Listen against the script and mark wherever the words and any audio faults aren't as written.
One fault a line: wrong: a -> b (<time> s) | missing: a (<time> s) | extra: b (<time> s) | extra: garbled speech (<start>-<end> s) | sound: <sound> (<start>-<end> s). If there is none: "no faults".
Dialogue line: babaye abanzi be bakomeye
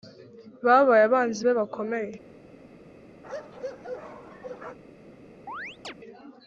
sound: bark (3.2-4.8 s)
sound: chirp (5.5-5.9 s)